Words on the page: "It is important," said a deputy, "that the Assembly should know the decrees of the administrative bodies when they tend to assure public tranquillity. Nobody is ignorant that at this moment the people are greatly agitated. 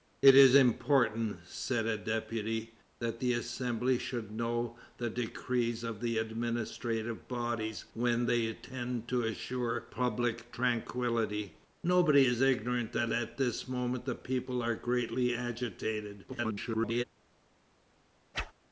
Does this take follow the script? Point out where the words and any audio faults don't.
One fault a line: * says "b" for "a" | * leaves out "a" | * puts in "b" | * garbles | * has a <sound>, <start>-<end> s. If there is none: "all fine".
* garbles
* has a whoosh, 18.3-18.5 s